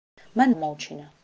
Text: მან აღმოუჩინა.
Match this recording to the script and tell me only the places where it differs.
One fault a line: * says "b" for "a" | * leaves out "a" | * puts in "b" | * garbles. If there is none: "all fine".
all fine